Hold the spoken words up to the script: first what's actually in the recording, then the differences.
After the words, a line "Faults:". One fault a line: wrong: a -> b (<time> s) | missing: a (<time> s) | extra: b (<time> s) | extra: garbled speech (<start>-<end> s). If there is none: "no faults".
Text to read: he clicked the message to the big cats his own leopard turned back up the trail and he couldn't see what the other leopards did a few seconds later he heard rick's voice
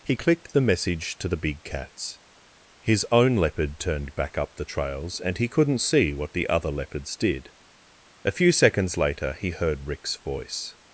he clicked the message to the big cats his own leopard turned back up the trails and he couldn't see what the other leopards did a few seconds later he heard rick's voice
Faults:
wrong: trail -> trails (4.6 s)